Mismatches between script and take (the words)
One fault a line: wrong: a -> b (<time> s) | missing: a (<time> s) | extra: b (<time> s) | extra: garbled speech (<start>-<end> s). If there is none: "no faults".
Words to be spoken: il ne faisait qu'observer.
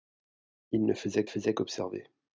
extra: faisait (1.3 s)